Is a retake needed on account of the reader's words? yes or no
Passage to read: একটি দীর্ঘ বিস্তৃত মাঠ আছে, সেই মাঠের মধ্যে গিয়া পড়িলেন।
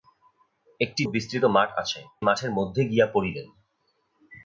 yes